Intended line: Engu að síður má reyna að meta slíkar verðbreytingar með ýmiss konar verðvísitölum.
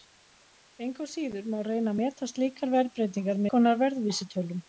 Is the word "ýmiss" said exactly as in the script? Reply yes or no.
no